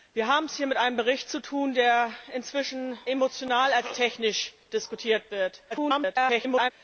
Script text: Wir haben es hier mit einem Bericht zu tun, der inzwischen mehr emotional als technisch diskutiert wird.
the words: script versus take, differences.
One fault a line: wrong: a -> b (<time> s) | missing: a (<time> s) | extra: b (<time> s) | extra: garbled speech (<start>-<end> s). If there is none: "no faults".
missing: mehr (3.0 s)
extra: garbled speech (5.7-6.7 s)